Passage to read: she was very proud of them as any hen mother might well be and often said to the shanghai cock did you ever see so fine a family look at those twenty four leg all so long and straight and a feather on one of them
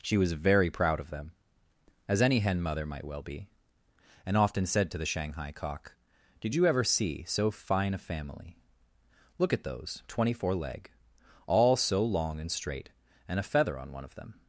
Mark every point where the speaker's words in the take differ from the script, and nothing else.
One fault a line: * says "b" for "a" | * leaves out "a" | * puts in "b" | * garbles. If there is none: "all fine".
all fine